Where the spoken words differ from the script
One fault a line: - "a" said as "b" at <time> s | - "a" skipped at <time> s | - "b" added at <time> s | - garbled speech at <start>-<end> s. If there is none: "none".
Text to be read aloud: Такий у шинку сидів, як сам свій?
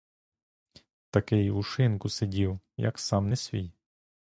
- "не" added at 3.3 s